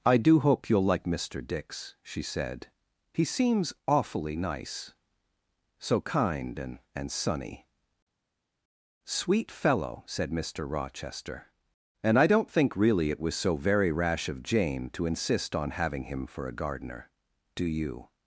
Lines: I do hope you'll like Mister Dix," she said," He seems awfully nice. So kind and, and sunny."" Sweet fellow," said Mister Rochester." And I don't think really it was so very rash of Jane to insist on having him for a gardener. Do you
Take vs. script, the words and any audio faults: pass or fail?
pass